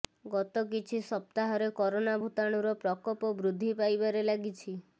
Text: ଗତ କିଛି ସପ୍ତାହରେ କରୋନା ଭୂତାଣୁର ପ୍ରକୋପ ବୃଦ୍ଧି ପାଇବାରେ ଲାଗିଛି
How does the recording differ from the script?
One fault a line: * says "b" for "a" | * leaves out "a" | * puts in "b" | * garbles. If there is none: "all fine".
all fine